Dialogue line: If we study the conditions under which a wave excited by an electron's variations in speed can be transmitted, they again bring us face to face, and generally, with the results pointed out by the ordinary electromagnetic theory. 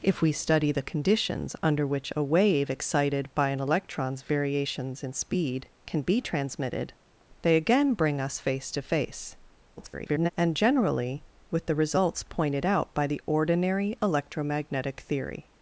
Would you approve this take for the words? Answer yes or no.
no